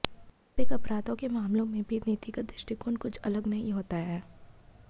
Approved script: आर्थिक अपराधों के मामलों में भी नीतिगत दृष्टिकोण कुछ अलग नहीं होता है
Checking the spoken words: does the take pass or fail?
pass